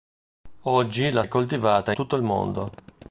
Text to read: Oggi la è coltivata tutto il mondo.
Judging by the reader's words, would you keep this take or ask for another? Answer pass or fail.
pass